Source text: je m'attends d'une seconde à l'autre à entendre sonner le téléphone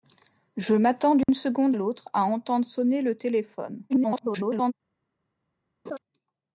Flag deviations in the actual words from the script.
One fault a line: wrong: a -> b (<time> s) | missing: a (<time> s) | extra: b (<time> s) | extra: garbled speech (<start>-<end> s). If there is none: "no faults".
missing: à (1.8 s)
extra: garbled speech (3.9-4.7 s)